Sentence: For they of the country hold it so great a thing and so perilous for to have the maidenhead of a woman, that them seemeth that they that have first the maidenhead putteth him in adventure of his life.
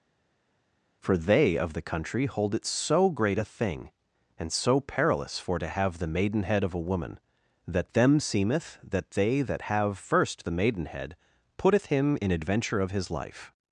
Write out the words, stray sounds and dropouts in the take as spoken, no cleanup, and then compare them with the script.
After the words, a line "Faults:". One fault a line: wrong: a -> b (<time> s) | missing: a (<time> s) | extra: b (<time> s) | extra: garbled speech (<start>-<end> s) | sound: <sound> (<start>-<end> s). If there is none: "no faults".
For they of the country hold it so great a thing and so perilous for to have the maidenhead of a woman, that them seemeth that they that have first the maidenhead putteth him in adventure of his life.
Faults:
no faults